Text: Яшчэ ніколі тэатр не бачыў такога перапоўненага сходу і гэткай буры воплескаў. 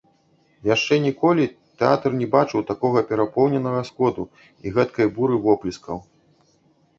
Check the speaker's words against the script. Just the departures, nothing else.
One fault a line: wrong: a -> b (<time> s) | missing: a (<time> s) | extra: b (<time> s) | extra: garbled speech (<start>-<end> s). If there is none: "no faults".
no faults